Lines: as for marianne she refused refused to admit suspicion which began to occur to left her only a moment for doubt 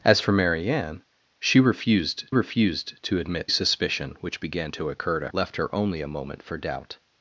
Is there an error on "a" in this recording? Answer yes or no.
no